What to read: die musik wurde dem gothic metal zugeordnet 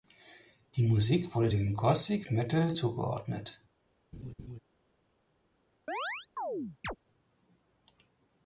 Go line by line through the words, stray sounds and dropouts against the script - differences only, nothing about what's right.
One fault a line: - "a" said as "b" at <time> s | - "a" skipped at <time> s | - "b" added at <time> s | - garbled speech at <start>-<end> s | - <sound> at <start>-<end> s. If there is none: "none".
- laugh at 4.1-4.6 s
- chirp at 5.9-7.0 s